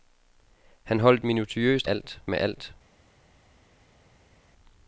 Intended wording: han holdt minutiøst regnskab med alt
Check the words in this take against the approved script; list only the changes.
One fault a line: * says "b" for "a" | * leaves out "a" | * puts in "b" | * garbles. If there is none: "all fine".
* says "alt" for "regnskab"